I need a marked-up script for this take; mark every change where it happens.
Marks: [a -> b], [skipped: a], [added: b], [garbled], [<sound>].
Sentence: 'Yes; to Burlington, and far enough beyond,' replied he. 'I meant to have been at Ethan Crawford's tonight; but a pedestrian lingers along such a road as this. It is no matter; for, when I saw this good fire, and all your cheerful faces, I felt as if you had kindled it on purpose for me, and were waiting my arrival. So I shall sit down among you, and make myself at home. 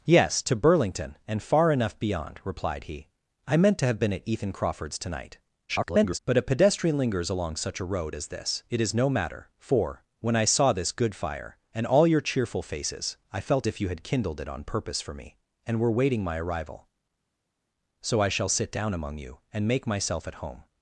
'Yes; to Burlington, and far enough beyond,' replied he. 'I meant to have been at Ethan Crawford's tonight; [garbled] but a pedestrian lingers along such a road as this. It is no matter; for, when I saw this good fire, and all your cheerful faces, I felt [skipped: as] if you had kindled it on purpose for me, and were waiting my arrival. So I shall sit down among you, and make myself at home.